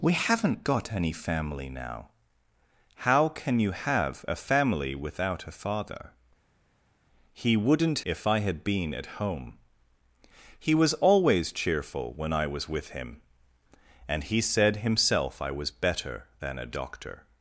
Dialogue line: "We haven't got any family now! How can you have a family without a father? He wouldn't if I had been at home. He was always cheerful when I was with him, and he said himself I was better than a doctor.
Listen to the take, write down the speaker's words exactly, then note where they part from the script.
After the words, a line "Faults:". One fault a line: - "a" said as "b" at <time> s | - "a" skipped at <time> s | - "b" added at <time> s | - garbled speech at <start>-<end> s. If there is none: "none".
"We haven't got any family now! How can you have a family without a father? He wouldn't if I had been at home. He was always cheerful when I was with him, and he said himself I was better than a doctor.
Faults:
none